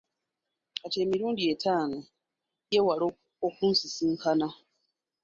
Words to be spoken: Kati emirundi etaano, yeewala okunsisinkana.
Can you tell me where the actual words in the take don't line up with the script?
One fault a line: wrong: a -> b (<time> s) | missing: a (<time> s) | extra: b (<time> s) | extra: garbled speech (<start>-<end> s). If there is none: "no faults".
no faults